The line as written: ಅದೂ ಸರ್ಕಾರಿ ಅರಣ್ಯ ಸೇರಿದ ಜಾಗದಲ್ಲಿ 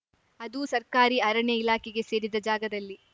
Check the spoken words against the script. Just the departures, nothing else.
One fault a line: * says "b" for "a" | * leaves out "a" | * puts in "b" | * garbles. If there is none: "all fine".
* puts in "ಇಲಾಖೆಗೆ"